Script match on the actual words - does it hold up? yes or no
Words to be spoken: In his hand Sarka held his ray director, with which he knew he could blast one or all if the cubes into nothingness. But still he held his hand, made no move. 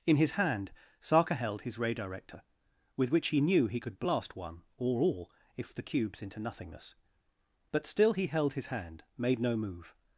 yes